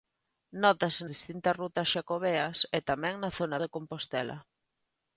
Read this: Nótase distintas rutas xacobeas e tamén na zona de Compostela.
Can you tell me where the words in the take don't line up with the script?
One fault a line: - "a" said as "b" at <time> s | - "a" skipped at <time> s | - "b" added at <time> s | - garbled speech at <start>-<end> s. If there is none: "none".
none